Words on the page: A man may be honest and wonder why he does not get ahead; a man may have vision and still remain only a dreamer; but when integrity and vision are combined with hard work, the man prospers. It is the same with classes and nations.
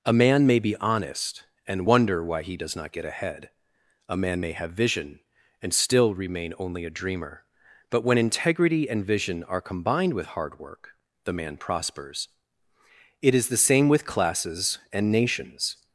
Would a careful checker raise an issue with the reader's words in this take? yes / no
no